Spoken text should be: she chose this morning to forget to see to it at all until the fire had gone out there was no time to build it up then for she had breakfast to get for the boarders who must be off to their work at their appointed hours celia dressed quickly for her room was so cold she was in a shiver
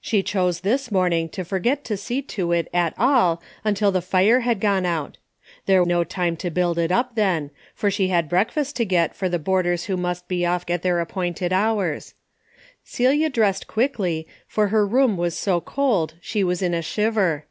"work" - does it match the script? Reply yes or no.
no